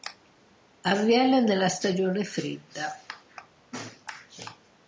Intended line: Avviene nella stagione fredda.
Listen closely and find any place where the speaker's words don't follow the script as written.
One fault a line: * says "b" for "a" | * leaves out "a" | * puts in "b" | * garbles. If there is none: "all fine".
all fine